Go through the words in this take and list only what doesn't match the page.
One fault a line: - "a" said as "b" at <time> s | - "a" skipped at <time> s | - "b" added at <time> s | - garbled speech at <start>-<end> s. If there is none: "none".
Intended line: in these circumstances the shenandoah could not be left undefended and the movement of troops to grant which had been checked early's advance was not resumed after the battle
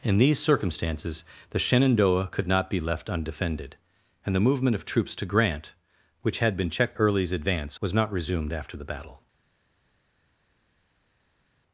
none